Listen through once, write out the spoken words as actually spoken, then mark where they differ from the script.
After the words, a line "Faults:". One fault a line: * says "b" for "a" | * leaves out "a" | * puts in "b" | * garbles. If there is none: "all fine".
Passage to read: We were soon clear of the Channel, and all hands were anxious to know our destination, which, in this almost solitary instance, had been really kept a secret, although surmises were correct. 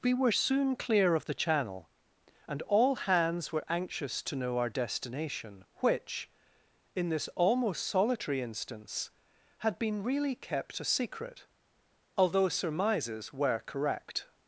We were soon clear of the Channel, and all hands were anxious to know our destination, which, in this almost solitary instance, had been really kept a secret, although surmises were correct.
Faults:
all fine